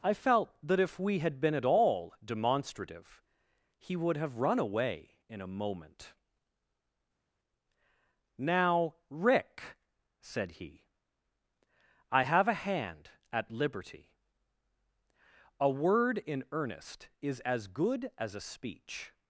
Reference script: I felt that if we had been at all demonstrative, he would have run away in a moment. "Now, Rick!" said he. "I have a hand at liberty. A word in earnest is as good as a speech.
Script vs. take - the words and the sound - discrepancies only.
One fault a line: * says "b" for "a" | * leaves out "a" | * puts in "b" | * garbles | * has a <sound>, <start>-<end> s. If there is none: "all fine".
all fine